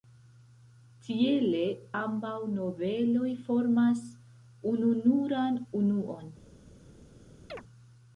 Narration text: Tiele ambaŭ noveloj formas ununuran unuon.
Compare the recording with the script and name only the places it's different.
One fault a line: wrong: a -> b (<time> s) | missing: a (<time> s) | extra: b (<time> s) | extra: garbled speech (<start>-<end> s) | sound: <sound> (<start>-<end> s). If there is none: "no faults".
sound: chirp (7.5-7.6 s)